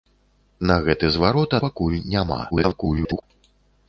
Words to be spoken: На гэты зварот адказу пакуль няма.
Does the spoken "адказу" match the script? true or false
false